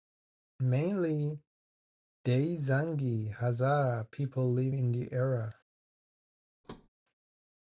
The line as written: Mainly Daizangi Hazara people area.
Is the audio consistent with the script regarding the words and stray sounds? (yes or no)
no